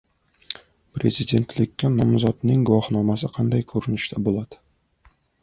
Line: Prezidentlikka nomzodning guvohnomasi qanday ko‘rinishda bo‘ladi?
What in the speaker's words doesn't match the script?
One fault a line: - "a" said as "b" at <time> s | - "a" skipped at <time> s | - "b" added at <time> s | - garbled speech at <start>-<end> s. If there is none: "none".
none